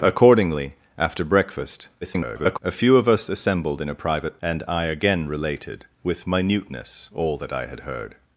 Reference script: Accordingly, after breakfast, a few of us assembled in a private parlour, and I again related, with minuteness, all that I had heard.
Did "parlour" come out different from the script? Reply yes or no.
yes